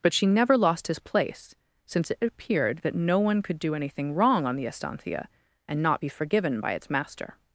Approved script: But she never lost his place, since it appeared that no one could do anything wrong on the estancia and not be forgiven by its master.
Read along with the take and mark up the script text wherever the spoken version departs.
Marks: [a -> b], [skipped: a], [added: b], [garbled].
But she never lost his place, since it appeared that no one could do anything wrong on the estancia and not be forgiven by its master.